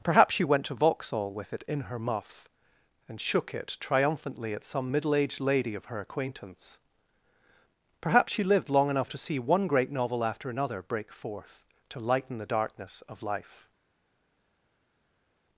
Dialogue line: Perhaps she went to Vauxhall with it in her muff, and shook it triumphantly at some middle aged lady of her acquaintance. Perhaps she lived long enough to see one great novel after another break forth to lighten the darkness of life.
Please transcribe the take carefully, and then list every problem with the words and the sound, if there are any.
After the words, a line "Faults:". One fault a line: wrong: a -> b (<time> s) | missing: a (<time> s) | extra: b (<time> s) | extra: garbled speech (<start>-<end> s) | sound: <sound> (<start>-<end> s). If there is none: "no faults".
Perhaps she went to Vauxhall with it in her muff, and shook it triumphantly at some middle aged lady of her acquaintance. Perhaps she lived long enough to see one great novel after another break forth to lighten the darkness of life.
Faults:
no faults